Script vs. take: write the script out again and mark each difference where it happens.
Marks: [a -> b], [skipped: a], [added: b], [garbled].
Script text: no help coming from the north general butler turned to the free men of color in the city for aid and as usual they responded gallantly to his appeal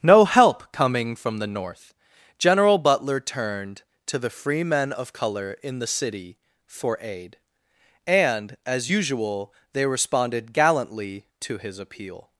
no help coming from the north general butler turned to the free men of color in the city for aid and as usual they responded gallantly to his appeal